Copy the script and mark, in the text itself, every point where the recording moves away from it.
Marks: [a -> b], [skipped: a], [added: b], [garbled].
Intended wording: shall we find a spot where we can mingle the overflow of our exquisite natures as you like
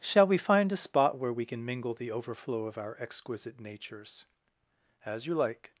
shall we find a spot where we can mingle the overflow of our exquisite natures as you like